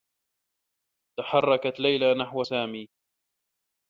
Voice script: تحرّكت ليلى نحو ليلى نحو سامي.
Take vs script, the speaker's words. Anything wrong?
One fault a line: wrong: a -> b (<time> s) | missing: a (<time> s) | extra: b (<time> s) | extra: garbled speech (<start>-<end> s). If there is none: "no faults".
missing: ليلى نحو (2.5 s)